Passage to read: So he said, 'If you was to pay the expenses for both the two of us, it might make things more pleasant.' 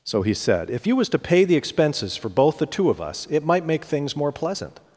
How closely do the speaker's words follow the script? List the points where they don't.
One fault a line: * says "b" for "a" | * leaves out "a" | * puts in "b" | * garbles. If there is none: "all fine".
all fine